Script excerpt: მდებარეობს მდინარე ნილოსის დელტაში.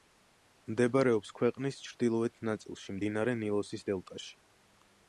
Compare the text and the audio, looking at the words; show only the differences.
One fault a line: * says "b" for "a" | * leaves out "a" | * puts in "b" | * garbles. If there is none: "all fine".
* puts in "ქვეყნის ჩრდილოეთ ნაწილში"